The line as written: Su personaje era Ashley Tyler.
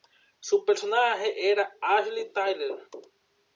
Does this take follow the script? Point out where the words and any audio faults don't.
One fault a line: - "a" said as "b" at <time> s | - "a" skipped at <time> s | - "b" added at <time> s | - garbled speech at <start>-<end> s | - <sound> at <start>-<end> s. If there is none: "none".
none